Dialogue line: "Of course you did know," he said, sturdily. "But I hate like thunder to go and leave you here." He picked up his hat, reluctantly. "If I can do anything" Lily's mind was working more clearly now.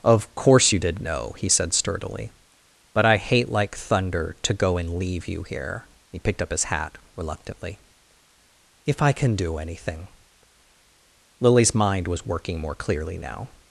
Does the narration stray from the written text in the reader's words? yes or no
no